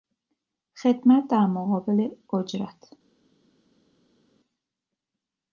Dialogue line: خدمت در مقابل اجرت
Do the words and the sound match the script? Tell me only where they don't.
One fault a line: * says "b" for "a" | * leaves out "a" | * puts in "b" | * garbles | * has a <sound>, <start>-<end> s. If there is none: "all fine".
all fine